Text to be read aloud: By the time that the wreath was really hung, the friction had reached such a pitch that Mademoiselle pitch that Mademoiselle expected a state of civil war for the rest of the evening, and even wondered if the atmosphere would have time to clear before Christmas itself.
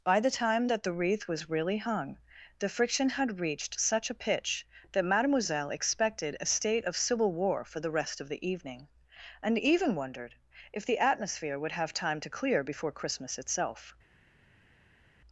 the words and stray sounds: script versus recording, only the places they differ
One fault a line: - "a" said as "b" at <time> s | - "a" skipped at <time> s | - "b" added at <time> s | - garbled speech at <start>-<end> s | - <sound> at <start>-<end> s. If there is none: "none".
- "pitch that Mademoiselle" skipped at 5.7 s